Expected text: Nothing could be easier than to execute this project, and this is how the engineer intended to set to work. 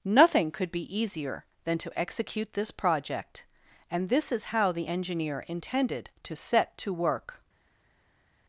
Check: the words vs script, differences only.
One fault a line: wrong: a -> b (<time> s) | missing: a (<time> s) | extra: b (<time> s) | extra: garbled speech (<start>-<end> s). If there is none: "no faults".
no faults